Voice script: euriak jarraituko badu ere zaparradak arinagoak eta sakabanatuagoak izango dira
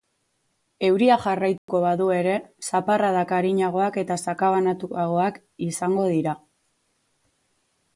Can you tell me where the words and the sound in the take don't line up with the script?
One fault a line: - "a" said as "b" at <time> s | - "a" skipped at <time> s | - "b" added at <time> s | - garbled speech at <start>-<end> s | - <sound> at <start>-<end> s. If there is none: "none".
- dropout at 1.6-1.7 s